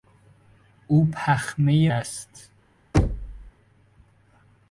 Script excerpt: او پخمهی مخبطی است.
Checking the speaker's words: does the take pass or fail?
fail